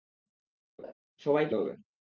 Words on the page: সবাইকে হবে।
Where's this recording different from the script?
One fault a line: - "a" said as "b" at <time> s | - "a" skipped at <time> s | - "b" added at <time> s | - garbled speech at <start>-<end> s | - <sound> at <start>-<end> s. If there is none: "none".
- laugh at 0.8-0.9 s